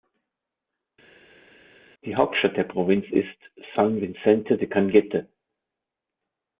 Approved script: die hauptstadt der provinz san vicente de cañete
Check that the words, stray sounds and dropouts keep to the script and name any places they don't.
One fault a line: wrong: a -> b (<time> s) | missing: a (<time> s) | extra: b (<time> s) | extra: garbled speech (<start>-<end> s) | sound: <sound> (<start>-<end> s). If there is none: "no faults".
extra: ist (3.1 s)